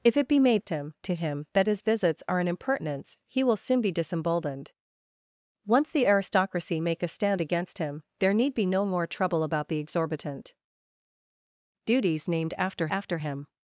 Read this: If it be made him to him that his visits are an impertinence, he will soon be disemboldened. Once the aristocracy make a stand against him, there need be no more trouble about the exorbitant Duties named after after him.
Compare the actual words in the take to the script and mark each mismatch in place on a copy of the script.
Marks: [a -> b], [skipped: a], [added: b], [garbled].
If it be made him to him that his visits are an impertinence, he will soon be disemboldened. Once the aristocracy make a stand against him, there need be no more trouble about the exorbitant Duties named after after him.